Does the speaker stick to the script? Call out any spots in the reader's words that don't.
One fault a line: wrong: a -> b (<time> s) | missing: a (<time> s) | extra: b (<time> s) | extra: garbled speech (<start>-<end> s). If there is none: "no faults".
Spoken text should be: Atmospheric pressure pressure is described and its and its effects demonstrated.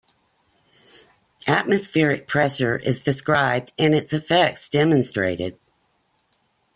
missing: pressure (2.8 s)
missing: and its (4.1 s)